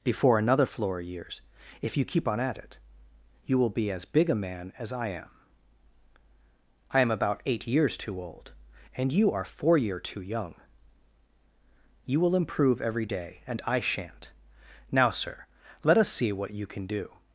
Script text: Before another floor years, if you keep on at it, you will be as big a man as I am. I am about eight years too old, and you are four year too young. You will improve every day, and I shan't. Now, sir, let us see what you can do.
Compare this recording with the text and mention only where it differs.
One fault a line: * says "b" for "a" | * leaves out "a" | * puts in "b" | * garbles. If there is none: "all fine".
all fine